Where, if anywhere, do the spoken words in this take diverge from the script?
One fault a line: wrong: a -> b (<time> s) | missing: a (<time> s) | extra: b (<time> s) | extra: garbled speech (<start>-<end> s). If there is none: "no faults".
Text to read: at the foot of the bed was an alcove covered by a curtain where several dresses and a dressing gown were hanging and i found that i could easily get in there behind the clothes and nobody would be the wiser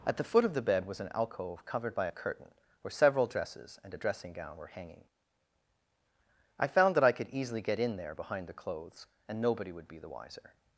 missing: and (5.0 s)